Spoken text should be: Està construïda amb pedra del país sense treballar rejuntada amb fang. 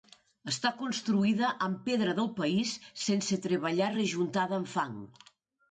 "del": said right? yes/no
yes